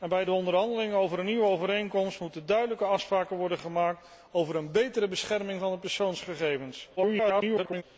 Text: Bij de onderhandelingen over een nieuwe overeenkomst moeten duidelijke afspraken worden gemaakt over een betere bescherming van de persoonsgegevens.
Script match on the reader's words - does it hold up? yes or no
no